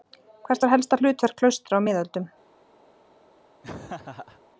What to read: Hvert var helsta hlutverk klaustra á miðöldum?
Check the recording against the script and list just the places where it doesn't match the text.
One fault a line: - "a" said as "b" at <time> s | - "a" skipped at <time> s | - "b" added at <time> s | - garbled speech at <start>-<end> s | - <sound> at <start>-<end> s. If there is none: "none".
- laugh at 3.6-4.4 s